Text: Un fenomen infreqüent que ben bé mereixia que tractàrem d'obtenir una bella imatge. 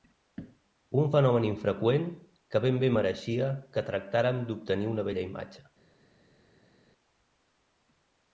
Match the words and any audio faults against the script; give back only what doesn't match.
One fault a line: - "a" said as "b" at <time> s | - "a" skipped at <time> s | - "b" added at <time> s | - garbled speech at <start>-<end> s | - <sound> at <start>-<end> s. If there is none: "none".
none